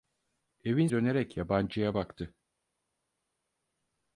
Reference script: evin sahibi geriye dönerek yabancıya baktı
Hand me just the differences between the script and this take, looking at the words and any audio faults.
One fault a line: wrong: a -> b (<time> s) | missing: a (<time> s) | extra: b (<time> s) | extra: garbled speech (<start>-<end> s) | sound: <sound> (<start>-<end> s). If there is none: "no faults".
missing: sahibi geriye (0.9 s)